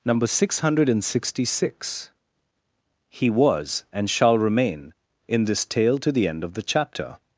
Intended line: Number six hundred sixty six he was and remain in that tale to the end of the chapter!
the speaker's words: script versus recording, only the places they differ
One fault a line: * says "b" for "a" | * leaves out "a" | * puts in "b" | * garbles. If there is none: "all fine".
* puts in "shall"
* says "this" for "that"